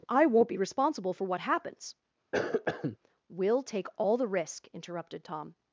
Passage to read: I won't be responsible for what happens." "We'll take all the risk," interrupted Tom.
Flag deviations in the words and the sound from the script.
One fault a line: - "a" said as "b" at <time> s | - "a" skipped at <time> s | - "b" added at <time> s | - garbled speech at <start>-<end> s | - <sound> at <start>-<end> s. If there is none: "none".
- cough at 2.3-3.0 s